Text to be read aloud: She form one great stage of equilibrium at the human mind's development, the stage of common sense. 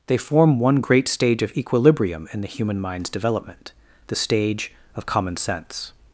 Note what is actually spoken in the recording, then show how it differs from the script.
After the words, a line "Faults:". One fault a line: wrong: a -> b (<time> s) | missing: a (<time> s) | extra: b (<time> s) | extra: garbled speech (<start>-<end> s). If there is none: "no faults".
They form one great stage of equilibrium in the human mind's development, the stage of common sense.
Faults:
wrong: She -> They (0.1 s)
wrong: at -> in (2.3 s)